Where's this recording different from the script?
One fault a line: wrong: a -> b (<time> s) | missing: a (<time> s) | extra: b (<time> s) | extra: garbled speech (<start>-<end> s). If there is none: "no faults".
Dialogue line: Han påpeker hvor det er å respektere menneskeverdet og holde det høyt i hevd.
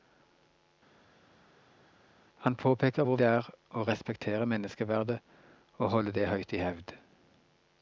no faults